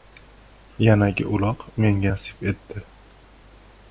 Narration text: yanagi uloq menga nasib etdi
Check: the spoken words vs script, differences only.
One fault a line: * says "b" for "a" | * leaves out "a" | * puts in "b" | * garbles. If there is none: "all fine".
all fine